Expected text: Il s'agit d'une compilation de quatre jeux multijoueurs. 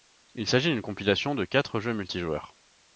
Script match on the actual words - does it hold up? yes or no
yes